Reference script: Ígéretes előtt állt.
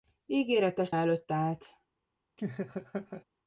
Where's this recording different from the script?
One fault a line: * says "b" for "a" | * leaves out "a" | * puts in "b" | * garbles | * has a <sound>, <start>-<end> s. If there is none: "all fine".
* has a laugh, 2.4-3.2 s